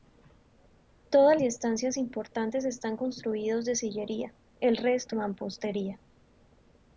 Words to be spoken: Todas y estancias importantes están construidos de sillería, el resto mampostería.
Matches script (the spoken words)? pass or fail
pass